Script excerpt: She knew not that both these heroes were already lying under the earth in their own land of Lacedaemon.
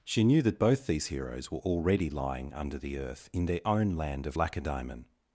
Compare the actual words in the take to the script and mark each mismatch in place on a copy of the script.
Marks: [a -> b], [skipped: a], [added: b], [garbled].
She knew [skipped: not] that both these heroes were already lying under the earth in their own land of Lacedaemon.